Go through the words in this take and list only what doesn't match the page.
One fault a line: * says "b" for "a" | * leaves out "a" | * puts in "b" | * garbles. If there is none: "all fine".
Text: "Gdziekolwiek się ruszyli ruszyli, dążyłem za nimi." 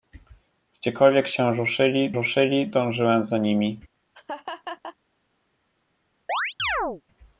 all fine